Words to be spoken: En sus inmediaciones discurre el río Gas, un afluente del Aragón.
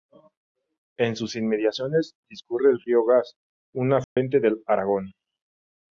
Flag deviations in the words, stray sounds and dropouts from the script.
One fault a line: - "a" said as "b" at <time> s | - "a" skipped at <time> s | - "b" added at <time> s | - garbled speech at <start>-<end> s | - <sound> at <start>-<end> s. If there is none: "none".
- dropout at 4.0-4.2 s